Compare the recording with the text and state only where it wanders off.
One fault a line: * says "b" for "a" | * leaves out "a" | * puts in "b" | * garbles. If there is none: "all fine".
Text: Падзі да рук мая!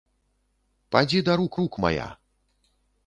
* puts in "рук"